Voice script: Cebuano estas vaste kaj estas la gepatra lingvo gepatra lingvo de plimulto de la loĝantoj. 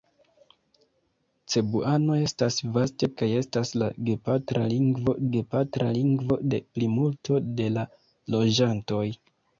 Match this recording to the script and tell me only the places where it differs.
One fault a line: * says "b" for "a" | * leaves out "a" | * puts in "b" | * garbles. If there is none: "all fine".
all fine